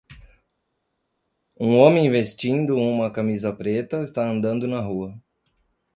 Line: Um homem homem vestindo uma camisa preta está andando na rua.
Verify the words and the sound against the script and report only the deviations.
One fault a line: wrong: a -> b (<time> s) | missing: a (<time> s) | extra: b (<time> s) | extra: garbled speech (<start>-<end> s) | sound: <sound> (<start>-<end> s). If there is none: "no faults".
missing: homem (2.1 s)